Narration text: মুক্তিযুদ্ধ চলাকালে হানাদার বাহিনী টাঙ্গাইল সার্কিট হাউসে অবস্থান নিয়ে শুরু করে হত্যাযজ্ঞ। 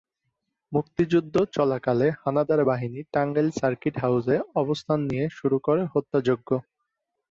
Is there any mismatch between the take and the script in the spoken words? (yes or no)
no